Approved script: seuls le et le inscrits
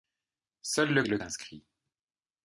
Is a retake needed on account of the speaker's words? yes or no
no